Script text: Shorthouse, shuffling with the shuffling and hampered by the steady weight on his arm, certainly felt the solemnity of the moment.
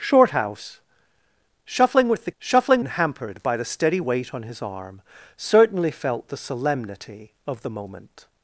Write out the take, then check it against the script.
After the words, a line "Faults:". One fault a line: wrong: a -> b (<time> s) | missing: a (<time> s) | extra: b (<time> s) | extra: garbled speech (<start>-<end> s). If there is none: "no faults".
Shorthouse, shuffling with the shuffling and hampered by the steady weight on his arm, certainly felt the solemnity of the moment.
Faults:
no faults